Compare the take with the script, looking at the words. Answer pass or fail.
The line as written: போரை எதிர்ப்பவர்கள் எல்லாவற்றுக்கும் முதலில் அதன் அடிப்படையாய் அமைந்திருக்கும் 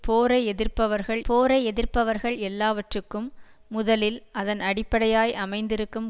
fail